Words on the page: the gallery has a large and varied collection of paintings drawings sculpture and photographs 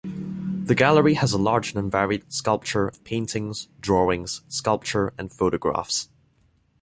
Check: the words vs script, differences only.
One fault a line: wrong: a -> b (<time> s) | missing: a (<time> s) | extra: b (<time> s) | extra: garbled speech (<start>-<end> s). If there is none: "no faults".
wrong: collection -> sculpture (2.3 s)